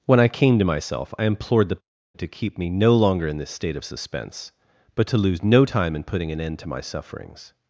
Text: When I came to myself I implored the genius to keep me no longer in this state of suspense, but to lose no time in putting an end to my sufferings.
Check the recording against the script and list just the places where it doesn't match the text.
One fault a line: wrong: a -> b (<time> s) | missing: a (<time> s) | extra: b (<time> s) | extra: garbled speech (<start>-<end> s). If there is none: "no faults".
missing: genius (1.8 s)